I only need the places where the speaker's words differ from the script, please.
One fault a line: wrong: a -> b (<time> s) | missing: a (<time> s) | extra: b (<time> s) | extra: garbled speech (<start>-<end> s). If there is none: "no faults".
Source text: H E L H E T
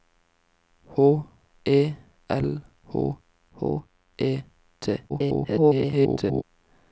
extra: H (3.5 s)
extra: garbled speech (5.1-6.4 s)